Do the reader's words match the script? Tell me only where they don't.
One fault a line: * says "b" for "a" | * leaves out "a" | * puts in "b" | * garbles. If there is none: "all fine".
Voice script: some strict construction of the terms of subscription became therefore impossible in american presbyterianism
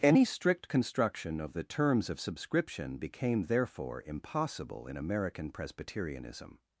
* says "any" for "some"